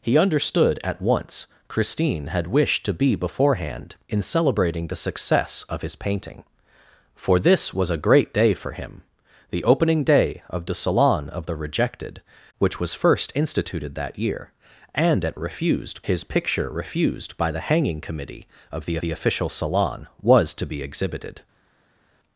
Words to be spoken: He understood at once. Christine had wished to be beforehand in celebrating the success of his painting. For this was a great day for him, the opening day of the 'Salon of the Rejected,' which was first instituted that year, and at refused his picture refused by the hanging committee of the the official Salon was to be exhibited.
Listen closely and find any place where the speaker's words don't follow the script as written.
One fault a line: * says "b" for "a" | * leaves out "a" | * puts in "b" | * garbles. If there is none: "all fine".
all fine